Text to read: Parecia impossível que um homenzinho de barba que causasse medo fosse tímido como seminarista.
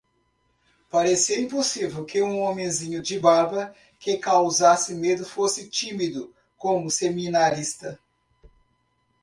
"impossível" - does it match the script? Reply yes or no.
yes